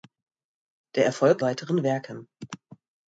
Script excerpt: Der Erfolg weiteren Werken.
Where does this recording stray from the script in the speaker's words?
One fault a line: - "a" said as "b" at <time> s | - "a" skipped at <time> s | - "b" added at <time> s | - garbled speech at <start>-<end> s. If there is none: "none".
none